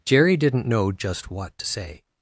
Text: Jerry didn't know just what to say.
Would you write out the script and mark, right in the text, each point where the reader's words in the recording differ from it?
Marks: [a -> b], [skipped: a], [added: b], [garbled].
Jerry didn't know just what to say.